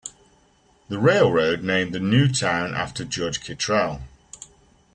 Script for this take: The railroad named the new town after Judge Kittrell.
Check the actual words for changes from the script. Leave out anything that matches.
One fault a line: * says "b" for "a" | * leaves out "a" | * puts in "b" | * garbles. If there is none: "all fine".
all fine